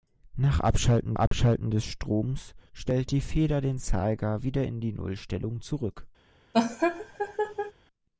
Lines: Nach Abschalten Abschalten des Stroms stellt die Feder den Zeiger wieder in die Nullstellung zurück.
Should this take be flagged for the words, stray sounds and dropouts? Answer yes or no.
yes